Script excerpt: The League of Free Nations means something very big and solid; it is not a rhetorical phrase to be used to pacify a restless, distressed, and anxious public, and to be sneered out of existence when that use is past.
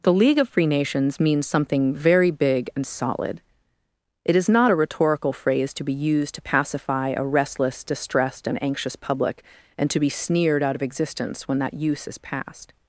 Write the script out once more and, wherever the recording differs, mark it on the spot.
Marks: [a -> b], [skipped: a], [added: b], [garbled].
The League of Free Nations means something very big and solid; it is not a rhetorical phrase to be used to pacify a restless, distressed, and anxious public, and to be sneered out of existence when that use is past.